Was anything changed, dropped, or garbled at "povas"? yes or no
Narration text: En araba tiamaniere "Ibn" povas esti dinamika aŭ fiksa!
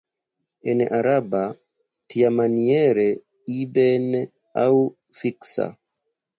yes